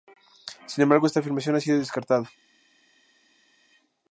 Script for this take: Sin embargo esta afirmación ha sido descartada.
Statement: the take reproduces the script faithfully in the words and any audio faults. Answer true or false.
true